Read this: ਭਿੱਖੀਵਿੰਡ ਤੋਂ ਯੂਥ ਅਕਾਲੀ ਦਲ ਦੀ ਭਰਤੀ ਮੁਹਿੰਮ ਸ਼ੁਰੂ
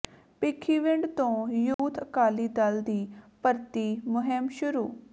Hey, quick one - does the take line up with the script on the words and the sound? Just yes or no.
no